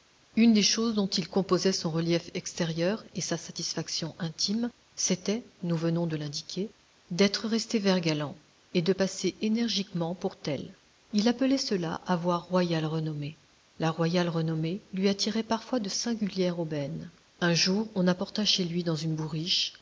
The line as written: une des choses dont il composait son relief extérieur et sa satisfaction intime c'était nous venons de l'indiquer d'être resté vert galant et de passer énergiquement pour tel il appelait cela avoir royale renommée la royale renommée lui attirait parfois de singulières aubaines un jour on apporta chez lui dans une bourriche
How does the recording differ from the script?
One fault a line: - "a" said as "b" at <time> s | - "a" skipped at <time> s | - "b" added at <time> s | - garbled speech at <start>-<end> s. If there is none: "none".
none